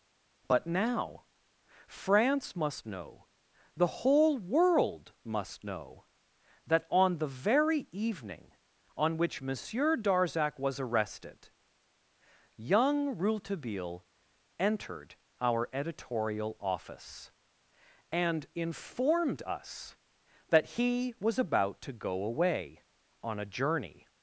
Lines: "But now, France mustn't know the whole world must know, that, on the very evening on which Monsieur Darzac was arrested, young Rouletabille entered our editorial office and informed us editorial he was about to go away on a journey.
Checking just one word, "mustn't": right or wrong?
wrong